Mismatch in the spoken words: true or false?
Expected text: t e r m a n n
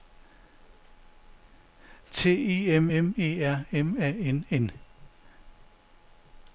true